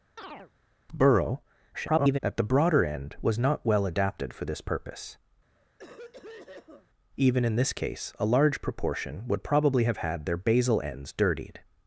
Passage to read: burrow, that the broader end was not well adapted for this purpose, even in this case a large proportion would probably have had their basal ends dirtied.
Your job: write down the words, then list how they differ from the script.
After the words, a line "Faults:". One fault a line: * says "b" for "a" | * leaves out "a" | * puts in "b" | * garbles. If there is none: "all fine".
burrow, [garbled] that the broader end was not well adapted for this purpose, even in this case a large proportion would probably have had their basal ends dirtied.
Faults:
* garbles